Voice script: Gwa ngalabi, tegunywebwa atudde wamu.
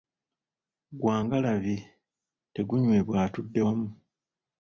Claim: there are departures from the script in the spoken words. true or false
false